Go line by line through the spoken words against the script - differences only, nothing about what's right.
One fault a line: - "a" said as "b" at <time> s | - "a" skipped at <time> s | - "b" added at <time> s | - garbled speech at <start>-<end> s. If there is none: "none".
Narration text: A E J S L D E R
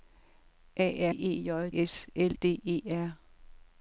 none